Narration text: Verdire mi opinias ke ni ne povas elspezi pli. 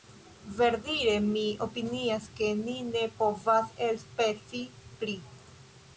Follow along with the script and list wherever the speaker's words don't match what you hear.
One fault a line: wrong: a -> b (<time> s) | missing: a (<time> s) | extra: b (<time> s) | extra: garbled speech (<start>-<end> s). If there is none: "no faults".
no faults